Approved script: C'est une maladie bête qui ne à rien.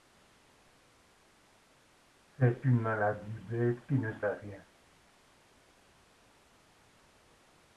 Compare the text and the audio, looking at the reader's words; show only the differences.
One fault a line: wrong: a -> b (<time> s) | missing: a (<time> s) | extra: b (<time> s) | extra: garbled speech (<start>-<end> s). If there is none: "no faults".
no faults